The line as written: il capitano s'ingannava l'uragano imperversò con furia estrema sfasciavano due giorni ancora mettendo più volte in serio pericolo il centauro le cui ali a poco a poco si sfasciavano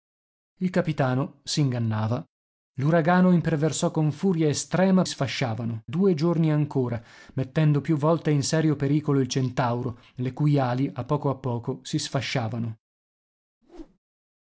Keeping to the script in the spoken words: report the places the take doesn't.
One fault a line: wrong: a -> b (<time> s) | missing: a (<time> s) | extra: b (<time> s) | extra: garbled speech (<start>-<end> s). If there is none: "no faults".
no faults